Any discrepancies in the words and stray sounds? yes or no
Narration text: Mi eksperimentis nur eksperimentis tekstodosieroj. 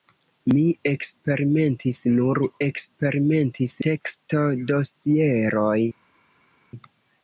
no